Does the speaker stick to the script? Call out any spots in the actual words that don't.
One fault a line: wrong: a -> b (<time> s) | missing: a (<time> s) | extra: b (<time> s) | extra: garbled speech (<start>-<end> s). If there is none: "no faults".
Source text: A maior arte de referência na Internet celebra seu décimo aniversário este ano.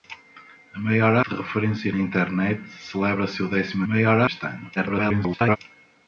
missing: arte (1.1 s)
wrong: aniversário -> maior (3.9 s)
extra: garbled speech (4.8-5.6 s)